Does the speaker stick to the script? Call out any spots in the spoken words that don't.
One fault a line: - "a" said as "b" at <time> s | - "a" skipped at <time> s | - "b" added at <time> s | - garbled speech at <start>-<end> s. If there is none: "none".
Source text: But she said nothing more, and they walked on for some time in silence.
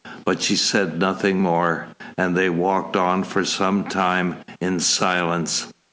none